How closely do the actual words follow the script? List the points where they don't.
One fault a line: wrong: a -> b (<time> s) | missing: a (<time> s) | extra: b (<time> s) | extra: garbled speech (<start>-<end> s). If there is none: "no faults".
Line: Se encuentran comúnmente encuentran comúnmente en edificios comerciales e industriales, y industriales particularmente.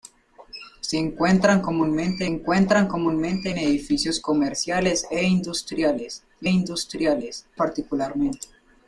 no faults